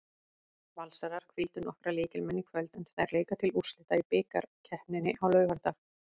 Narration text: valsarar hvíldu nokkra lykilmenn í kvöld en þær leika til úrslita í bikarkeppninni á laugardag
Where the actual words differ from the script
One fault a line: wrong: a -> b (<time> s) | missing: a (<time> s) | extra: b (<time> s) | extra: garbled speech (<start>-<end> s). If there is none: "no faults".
no faults